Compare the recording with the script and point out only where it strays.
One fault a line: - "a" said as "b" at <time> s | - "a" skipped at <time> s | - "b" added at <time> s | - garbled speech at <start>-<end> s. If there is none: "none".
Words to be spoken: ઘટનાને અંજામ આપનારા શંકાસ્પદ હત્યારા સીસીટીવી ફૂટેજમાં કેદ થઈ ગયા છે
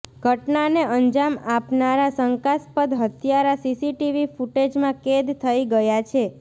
none